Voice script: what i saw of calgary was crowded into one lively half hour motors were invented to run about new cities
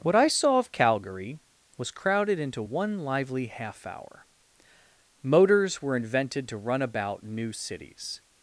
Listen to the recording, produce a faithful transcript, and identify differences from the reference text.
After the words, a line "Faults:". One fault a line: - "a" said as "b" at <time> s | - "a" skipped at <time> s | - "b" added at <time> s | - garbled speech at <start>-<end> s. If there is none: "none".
what i saw of calgary was crowded into one lively half hour motors were invented to run about new cities
Faults:
none